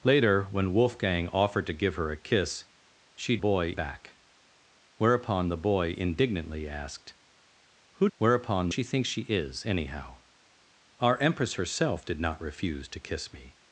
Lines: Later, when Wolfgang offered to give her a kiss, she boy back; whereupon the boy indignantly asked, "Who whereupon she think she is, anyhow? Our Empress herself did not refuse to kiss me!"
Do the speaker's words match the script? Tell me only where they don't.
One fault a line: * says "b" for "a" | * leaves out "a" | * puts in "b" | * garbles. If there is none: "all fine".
all fine